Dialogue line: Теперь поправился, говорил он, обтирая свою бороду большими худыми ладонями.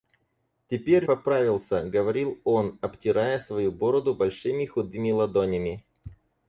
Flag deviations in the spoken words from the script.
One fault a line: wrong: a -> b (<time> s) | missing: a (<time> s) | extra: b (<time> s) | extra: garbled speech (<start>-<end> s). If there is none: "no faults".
no faults